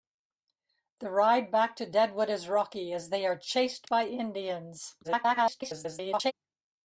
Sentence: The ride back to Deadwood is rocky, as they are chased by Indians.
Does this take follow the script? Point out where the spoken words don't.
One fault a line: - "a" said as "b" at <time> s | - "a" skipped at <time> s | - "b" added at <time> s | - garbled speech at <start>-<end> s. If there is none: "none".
- garbled speech at 5.0-6.3 s